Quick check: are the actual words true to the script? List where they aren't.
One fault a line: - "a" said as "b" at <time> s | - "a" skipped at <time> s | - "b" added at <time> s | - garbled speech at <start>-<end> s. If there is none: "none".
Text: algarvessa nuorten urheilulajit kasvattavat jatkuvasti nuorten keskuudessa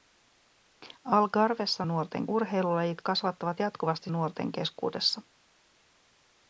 none